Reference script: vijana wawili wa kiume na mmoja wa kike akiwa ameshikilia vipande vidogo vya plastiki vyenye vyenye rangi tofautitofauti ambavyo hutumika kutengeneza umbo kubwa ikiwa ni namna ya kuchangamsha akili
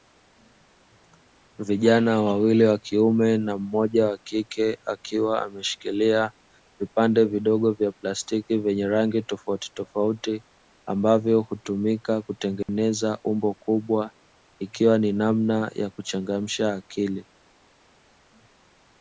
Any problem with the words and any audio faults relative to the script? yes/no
yes